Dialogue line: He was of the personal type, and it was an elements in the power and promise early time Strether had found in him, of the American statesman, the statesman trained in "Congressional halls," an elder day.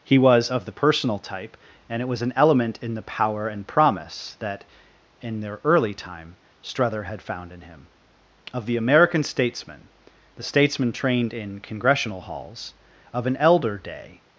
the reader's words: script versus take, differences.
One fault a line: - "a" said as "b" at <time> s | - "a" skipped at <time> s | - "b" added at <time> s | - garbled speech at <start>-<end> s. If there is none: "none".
- "elements" said as "element" at 2.4 s
- "that in their" added at 4.4 s
- "of" added at 13.1 s